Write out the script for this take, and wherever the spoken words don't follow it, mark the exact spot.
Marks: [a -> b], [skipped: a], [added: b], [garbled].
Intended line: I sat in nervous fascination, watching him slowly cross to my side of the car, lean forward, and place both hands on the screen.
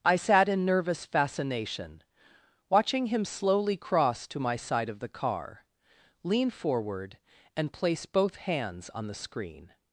I sat in nervous fascination, watching him slowly cross to my side of the car, lean forward, and place both hands on the screen.